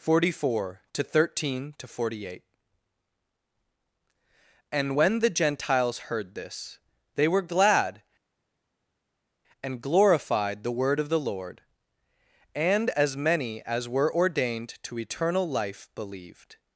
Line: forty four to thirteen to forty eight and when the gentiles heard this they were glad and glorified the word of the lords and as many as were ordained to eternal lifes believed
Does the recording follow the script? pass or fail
fail